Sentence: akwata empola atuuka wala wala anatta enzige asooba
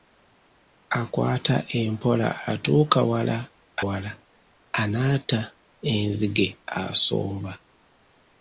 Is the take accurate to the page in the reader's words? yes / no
yes